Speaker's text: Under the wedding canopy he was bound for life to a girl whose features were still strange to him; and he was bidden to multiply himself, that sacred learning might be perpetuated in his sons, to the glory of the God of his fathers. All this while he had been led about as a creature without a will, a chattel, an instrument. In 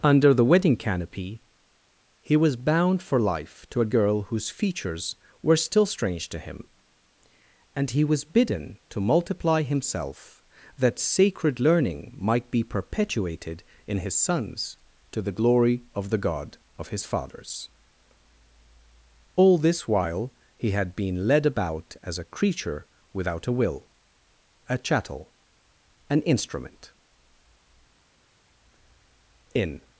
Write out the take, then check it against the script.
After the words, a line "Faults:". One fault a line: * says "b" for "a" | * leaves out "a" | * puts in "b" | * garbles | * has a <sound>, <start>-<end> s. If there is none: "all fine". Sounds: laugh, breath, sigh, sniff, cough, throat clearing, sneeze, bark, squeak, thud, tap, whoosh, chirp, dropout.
Under the wedding canopy he was bound for life to a girl whose features were still strange to him; and he was bidden to multiply himself, that sacred learning might be perpetuated in his sons, to the glory of the God of his fathers. All this while he had been led about as a creature without a will, a chattel, an instrument. In
Faults:
all fine